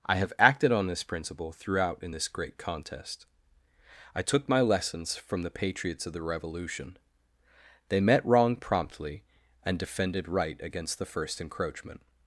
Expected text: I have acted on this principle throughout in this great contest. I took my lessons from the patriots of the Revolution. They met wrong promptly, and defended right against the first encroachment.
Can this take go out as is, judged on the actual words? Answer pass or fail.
pass